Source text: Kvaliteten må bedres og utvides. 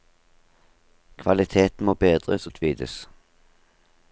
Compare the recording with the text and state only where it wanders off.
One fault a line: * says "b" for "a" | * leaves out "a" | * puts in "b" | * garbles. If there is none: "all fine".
all fine